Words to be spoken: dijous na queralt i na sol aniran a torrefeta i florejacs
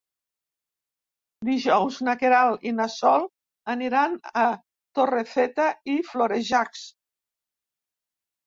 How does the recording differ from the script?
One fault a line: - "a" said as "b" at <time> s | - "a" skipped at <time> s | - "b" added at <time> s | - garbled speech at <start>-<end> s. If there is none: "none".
none